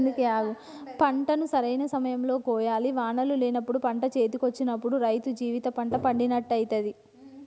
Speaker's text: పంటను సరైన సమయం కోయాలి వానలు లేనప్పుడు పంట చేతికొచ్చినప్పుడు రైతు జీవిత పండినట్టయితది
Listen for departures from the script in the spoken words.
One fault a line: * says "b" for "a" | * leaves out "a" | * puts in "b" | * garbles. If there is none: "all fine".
* puts in "లో"
* puts in "పంట"